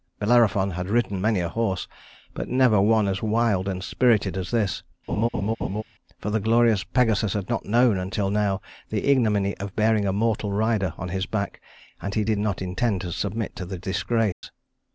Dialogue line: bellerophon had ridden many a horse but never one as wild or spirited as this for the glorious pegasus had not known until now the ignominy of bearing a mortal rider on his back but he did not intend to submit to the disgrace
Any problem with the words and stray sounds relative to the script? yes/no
yes